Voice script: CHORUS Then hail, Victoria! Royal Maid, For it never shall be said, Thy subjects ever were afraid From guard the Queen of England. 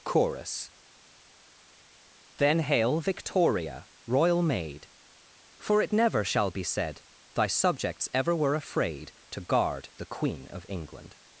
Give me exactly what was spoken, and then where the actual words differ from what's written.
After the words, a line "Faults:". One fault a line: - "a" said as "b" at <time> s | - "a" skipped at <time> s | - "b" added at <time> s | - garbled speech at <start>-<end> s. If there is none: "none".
CHORUS Then hail, Victoria! Royal Maid, For it never shall be said, Thy subjects ever were afraid To guard the Queen of England.
Faults:
- "From" said as "To" at 9.3 s